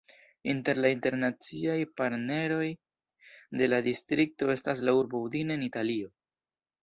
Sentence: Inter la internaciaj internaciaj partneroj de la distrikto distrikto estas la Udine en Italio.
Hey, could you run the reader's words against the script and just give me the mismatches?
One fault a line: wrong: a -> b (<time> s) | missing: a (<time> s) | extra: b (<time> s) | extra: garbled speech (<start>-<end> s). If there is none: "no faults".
missing: internaciaj (1.8 s)
missing: distrikto (4.5 s)
extra: urbo (5.0 s)